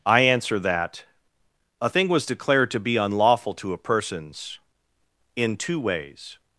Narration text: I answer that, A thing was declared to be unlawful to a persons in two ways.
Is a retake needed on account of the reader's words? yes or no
no